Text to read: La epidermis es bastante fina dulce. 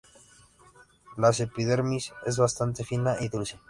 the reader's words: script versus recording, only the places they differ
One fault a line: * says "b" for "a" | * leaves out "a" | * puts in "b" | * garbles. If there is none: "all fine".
* puts in "y"